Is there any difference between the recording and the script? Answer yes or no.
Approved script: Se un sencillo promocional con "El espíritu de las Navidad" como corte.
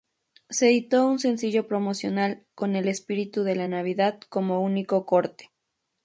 yes